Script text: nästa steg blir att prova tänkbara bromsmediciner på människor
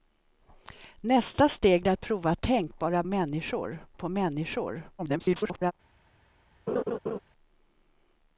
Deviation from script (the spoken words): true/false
true